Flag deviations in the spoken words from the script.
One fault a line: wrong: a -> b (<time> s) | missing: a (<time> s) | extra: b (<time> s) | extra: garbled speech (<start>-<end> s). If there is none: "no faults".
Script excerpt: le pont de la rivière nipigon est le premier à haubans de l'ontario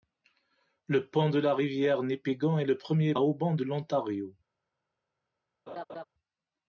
no faults